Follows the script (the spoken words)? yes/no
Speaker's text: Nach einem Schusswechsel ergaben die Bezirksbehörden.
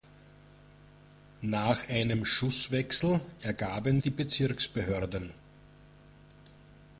yes